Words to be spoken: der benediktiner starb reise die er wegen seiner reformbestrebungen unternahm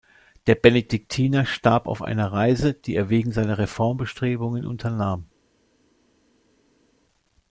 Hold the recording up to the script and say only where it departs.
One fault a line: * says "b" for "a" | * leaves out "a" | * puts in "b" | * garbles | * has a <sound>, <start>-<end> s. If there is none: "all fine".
* puts in "auf einer"